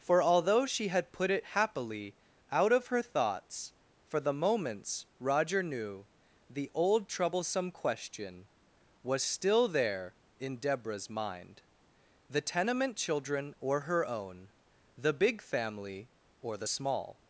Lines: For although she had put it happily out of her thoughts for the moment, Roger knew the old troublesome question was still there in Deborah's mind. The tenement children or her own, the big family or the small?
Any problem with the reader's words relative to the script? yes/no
yes